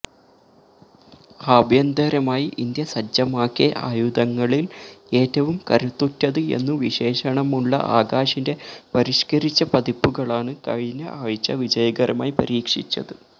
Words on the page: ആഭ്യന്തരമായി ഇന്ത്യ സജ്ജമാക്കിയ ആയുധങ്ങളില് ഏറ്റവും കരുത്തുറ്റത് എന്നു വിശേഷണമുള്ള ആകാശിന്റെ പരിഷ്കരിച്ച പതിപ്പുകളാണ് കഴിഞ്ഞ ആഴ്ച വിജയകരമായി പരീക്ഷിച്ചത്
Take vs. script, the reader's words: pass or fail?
pass